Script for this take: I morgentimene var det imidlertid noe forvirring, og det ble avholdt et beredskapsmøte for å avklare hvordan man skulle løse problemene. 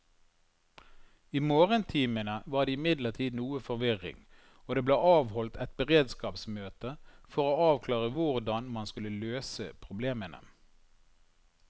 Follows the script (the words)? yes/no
yes